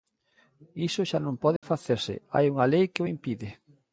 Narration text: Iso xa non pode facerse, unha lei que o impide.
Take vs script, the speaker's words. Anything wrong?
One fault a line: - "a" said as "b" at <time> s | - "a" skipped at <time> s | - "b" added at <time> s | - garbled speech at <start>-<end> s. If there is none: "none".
- "hai" added at 2.3 s